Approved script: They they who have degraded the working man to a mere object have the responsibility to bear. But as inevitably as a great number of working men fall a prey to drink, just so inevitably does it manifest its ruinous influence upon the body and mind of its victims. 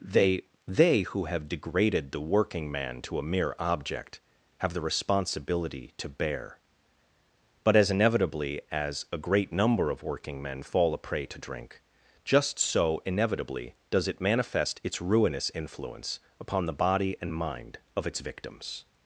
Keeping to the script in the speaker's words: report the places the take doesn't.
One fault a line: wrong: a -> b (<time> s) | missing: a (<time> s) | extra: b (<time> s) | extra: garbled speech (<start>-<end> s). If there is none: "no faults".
no faults